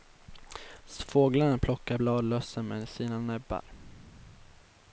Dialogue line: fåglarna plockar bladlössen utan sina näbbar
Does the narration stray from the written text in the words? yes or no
yes